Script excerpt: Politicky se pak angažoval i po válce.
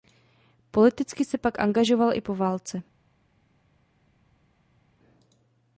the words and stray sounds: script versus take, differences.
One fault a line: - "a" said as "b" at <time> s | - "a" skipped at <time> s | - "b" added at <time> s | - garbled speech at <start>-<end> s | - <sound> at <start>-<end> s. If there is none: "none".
none